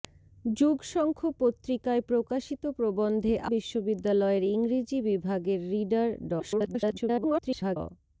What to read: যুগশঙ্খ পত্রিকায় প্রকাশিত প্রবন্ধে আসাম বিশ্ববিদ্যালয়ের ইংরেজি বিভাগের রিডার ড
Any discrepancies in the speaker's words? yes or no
yes